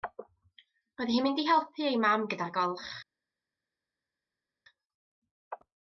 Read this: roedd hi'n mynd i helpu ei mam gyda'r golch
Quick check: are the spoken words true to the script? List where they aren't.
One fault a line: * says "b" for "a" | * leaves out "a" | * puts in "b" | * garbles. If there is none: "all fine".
all fine